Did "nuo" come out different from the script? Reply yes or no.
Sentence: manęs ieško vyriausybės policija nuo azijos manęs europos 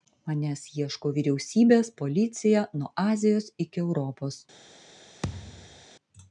no